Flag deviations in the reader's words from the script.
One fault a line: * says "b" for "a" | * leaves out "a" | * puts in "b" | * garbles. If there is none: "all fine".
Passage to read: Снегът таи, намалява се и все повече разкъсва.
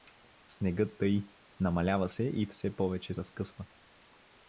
all fine